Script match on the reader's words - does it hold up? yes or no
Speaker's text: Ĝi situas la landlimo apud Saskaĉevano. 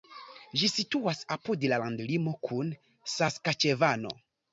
no